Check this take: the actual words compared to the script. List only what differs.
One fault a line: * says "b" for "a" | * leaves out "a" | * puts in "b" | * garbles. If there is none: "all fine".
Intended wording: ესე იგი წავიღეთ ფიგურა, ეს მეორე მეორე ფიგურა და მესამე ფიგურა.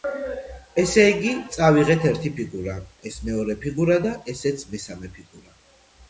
* puts in "ერთი"
* leaves out "მეორე"
* puts in "ესეც"